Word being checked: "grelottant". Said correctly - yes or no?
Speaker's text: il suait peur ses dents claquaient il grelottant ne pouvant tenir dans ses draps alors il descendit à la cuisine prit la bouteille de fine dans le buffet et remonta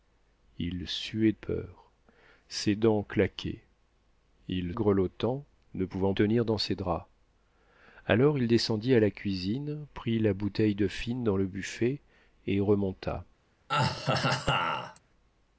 yes